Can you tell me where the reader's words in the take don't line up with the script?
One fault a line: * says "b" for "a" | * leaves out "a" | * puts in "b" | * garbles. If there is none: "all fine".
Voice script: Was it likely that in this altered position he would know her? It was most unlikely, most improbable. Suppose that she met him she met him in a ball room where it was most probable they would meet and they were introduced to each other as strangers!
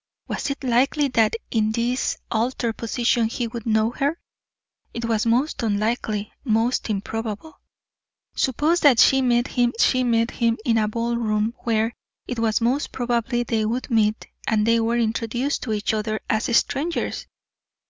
all fine